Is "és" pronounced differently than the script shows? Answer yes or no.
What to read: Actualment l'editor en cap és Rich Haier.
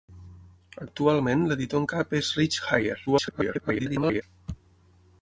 no